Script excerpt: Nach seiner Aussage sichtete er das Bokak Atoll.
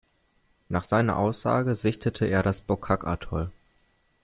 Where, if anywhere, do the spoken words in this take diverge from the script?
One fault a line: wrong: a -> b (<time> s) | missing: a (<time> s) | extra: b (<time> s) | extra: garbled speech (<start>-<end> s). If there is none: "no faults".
no faults